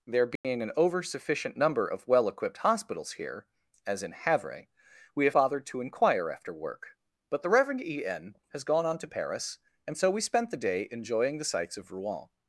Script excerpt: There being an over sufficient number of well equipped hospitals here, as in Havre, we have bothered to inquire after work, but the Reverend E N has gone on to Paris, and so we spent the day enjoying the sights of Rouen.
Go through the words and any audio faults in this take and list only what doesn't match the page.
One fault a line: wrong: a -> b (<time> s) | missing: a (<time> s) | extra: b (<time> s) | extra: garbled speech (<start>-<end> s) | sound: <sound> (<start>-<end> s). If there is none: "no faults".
sound: dropout (0.4-0.4 s)